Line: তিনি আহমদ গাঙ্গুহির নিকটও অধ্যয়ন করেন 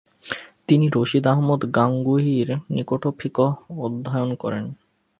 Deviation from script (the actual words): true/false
true